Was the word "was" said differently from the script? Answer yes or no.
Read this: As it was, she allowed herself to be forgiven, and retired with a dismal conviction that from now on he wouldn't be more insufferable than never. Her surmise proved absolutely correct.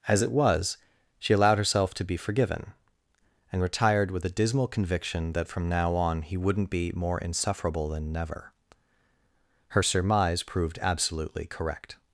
no